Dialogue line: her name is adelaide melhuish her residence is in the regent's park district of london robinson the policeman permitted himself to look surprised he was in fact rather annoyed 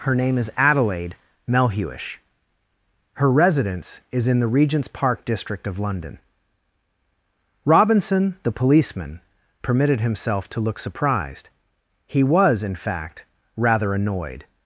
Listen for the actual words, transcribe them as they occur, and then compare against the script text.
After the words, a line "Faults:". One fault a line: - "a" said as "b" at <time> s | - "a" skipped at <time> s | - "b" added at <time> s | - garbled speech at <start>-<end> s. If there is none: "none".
her name is adelaide melhuish her residence is in the regent's park district of london robinson the policeman permitted himself to look surprised he was in fact rather annoyed
Faults:
none